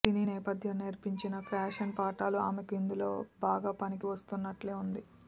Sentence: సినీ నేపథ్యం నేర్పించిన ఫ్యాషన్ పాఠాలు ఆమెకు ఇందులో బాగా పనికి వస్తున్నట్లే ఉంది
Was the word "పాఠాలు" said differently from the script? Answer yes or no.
no